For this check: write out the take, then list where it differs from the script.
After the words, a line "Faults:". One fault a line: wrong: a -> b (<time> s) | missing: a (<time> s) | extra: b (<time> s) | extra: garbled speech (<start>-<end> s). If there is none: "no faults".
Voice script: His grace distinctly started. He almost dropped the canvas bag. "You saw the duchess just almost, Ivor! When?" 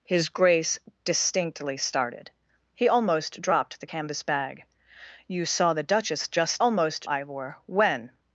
His grace distinctly started. He almost dropped the canvas bag. "You saw the duchess just almost, Ivor! When?"
Faults:
no faults